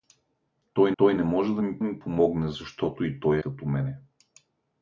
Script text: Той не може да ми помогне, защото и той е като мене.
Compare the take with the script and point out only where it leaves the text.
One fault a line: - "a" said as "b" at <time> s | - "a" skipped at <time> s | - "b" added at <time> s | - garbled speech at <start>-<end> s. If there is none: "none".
- "той" added at 1.0 s
- "ми" added at 1.8 s
- "е" skipped at 3.4 s